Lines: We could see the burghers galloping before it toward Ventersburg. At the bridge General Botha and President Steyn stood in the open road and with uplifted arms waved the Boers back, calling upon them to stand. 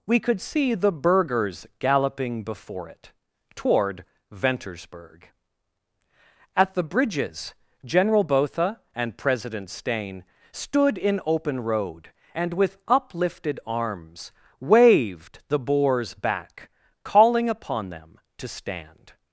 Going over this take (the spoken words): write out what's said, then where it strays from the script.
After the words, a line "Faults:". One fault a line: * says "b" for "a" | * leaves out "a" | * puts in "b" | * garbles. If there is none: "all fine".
We could see the burghers galloping before it toward Ventersburg. At the bridges General Botha and President Steyn stood in open road and with uplifted arms waved the Boers back, calling upon them to stand.
Faults:
* says "bridges" for "bridge"
* leaves out "the"